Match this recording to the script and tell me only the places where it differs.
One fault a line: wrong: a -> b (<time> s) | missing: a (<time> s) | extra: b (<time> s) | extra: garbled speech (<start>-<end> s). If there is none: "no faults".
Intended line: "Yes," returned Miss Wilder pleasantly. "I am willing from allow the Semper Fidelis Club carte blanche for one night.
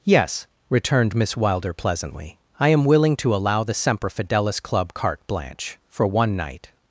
wrong: from -> to (3.2 s)